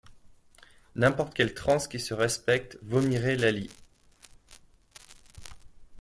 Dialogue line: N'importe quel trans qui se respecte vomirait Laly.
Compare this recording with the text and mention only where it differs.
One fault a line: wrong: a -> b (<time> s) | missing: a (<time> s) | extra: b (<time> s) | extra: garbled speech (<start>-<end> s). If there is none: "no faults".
no faults